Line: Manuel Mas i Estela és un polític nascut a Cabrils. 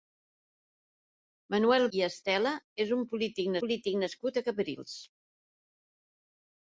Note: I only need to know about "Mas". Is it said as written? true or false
false